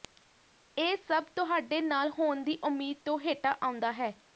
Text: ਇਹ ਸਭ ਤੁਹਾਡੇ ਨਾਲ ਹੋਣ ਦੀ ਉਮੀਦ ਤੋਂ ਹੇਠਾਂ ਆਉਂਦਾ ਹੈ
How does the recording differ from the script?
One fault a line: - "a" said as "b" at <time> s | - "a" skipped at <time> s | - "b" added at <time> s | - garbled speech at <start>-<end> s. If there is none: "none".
none